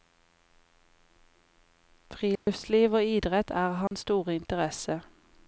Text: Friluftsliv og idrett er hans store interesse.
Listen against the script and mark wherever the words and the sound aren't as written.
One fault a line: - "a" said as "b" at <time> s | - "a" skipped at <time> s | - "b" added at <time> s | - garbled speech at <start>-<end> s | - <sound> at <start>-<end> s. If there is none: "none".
- dropout at 2.4-2.5 s
- dropout at 3.9-3.9 s